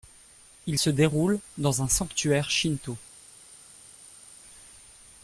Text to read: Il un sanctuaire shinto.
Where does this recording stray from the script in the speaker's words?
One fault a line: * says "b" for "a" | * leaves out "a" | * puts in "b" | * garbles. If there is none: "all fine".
* puts in "se déroule dans"